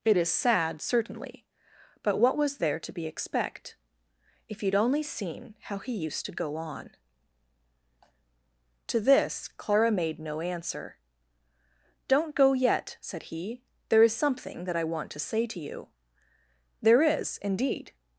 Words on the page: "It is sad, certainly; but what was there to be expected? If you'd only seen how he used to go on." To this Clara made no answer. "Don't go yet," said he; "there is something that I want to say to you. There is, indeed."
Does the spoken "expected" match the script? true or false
false